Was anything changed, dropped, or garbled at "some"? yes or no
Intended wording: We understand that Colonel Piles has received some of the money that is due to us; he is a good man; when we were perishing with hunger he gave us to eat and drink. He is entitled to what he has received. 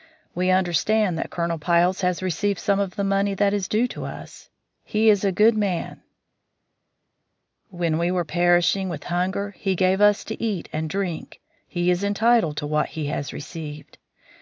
no